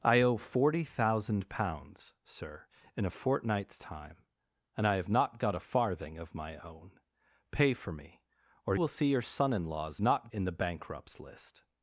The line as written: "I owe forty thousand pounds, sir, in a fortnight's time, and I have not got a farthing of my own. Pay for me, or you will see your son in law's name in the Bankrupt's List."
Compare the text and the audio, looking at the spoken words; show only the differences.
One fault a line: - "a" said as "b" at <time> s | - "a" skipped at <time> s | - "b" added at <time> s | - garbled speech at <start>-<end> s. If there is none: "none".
- "you" skipped at 8.8 s
- "name" said as "not" at 10.0 s